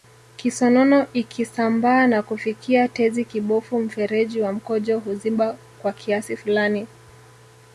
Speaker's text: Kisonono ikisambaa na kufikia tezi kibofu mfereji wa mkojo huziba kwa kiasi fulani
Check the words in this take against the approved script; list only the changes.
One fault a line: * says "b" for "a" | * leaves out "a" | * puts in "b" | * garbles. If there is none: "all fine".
all fine